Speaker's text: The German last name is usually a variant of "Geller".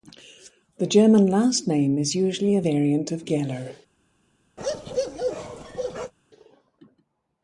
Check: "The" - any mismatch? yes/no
no